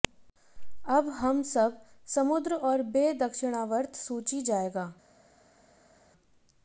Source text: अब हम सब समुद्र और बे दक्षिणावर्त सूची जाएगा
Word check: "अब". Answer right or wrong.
right